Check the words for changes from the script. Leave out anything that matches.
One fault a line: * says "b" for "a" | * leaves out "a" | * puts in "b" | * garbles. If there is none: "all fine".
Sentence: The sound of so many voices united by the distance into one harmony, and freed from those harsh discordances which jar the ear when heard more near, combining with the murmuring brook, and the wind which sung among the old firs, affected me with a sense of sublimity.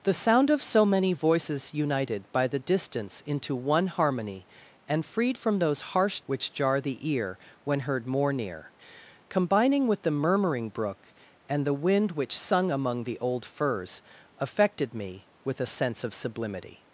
* leaves out "discordances"